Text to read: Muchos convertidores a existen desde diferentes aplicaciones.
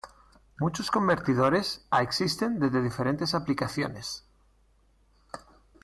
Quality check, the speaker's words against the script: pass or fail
pass